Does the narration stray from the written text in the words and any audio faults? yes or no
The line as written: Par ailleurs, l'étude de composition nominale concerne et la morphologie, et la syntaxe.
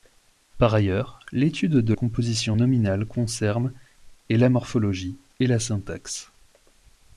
no